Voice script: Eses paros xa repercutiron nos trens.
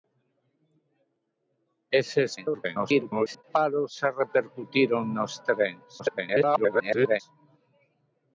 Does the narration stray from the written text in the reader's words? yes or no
yes